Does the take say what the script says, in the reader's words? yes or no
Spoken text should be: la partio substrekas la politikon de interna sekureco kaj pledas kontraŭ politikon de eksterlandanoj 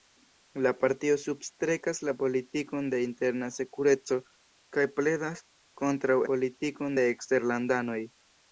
yes